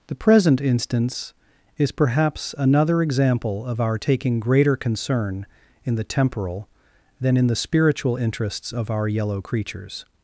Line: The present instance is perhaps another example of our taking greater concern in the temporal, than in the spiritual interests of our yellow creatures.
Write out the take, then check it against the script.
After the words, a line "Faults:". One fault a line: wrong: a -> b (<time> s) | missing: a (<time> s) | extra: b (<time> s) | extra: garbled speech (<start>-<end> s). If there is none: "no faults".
The present instance is perhaps another example of our taking greater concern in the temporal, than in the spiritual interests of our yellow creatures.
Faults:
no faults